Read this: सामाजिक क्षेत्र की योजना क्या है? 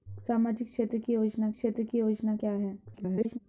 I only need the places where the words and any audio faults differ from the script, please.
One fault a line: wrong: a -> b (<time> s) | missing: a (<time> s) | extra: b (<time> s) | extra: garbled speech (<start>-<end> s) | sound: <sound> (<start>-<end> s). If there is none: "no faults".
extra: क्षेत्र की योजना (1.5 s)
extra: garbled speech (2.8-3.4 s)